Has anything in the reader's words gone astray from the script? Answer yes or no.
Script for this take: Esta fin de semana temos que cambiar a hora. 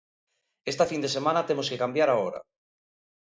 no